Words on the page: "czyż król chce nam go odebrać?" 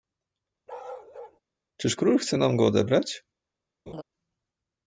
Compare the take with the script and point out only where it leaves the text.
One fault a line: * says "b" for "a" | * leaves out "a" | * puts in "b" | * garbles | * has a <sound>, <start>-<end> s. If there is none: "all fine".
* has a bark, 0.7-1.4 s
* has a laugh, 3.9-4.0 s